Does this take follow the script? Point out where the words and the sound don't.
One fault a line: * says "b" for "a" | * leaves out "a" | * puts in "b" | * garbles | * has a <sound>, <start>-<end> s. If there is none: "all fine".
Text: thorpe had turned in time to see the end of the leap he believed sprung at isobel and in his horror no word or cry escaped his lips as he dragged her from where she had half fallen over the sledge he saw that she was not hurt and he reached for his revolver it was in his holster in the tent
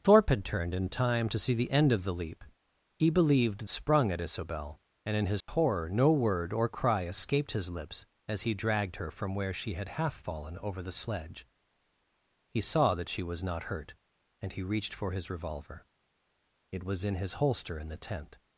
* has a dropout, 5.4-5.5 s